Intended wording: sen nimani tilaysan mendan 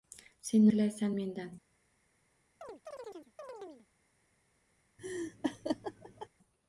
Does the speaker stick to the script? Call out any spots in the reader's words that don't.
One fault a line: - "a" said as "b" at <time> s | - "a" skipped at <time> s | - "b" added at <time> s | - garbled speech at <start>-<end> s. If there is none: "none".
- "nimani" skipped at 0.7 s